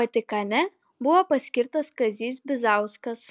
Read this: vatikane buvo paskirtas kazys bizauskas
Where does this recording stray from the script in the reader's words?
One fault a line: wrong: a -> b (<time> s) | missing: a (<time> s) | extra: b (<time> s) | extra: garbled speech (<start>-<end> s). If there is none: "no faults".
no faults